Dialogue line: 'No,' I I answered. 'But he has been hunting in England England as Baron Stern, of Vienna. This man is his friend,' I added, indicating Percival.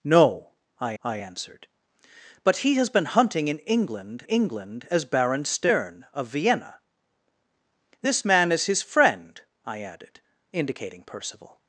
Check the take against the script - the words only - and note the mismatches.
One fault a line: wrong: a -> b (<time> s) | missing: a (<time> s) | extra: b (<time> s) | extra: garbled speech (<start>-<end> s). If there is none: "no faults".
no faults